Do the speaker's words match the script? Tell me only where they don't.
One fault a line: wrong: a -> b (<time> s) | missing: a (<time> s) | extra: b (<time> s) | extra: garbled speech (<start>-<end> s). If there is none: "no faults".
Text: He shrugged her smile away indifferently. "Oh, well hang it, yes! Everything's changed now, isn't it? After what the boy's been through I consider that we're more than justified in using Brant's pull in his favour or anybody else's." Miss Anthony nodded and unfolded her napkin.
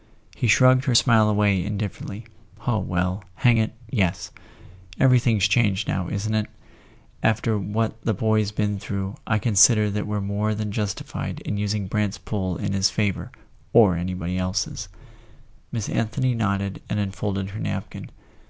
no faults